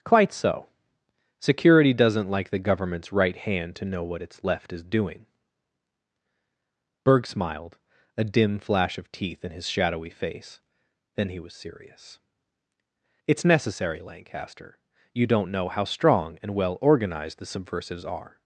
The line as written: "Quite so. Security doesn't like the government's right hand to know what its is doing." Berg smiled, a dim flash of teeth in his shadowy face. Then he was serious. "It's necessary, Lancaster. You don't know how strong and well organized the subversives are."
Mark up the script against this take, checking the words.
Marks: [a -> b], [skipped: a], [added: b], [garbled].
"Quite so. Security doesn't like the government's right hand to know what its [added: left] is doing." Berg smiled, a dim flash of teeth in his shadowy face. Then he was serious. "It's necessary, Lancaster. You don't know how strong and well organized the subversives are."